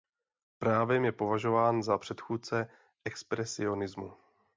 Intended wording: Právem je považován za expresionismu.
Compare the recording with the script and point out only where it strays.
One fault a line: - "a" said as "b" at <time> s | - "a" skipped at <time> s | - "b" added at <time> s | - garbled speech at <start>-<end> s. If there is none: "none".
- "předchůdce" added at 1.9 s